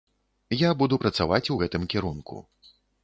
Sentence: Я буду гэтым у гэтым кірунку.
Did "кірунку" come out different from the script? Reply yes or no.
no